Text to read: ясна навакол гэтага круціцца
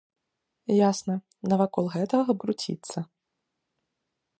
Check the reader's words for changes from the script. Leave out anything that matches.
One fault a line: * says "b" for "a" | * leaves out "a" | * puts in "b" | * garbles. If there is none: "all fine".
all fine